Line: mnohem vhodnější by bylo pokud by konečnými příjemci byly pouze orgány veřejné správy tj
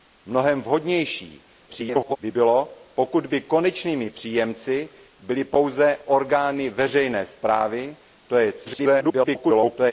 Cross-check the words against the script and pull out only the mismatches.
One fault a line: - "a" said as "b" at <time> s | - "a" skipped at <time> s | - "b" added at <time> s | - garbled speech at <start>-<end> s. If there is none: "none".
- garbled speech at 1.7-2.2 s
- garbled speech at 8.6-9.9 s